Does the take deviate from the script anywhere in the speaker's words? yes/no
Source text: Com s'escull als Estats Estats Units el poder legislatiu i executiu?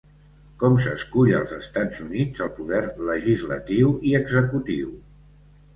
yes